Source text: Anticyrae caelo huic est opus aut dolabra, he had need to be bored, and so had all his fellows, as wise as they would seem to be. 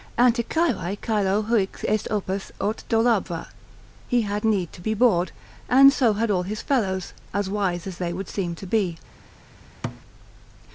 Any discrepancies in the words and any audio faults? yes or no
yes